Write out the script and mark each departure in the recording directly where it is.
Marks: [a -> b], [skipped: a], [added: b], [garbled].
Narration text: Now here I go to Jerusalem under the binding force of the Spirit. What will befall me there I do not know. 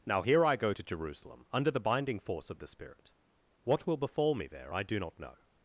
Now here I go to Jerusalem under the binding force of the Spirit. What will befall me there I do not know.